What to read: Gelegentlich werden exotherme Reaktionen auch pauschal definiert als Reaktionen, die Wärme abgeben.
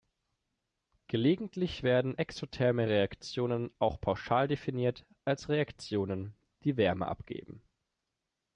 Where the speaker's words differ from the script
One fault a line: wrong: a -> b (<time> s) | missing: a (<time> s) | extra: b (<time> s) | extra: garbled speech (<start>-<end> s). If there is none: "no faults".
no faults